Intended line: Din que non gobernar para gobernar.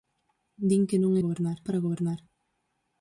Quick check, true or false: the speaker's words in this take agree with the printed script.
true